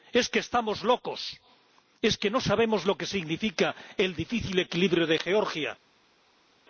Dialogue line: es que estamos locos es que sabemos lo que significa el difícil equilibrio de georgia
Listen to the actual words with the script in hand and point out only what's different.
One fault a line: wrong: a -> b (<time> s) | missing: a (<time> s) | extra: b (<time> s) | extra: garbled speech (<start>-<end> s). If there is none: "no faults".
extra: no (2.3 s)